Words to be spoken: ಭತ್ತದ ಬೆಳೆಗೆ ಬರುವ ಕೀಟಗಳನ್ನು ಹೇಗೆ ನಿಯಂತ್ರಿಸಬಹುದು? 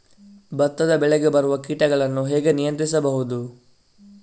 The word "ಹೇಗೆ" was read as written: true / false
true